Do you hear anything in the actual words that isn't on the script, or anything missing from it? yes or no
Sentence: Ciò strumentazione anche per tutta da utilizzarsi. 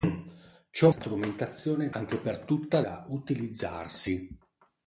no